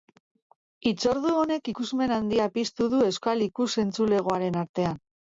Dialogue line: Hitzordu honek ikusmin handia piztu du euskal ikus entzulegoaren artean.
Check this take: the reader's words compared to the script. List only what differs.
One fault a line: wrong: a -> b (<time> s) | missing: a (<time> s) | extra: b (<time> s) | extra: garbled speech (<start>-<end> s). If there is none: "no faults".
no faults